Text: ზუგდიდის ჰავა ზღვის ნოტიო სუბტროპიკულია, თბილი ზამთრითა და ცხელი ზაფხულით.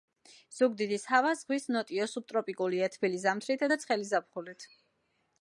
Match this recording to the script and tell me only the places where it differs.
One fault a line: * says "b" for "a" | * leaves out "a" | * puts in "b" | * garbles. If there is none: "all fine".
all fine